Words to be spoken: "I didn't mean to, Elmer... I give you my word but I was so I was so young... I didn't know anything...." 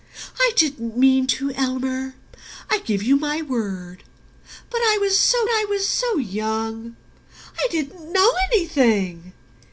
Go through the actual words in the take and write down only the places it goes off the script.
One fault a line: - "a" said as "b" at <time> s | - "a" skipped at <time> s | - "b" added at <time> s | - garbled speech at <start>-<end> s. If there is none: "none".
none